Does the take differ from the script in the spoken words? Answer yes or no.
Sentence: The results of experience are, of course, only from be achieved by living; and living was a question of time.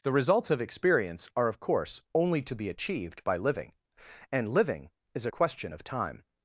yes